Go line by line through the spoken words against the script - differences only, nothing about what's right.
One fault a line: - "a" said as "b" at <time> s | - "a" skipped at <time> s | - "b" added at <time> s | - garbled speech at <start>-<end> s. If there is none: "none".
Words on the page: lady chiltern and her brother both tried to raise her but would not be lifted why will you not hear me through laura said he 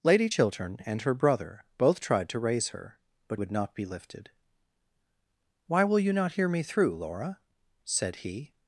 none